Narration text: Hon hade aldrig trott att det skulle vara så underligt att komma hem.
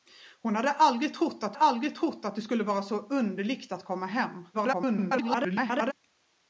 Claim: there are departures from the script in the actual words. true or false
true